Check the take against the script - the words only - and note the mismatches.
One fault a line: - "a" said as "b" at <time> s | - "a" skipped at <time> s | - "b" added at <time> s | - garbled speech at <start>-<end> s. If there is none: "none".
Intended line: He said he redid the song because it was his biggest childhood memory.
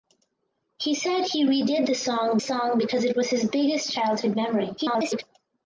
- "song" added at 2.4 s
- garbled speech at 4.8-5.2 s